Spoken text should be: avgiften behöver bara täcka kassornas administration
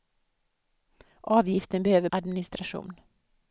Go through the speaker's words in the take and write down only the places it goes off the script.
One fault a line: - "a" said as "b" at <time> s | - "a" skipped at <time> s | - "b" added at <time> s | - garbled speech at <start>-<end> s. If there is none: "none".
- "bara täcka kassornas" skipped at 2.1 s